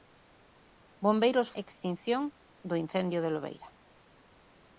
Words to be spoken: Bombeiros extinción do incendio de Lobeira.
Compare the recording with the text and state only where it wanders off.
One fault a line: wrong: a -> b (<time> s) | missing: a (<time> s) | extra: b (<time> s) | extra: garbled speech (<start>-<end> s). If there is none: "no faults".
no faults